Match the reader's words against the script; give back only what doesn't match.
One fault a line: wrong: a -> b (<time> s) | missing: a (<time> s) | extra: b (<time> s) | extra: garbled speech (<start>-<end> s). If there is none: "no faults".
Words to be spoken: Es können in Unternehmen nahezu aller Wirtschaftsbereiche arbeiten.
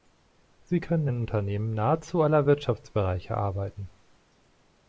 wrong: Es -> Sie (0.6 s)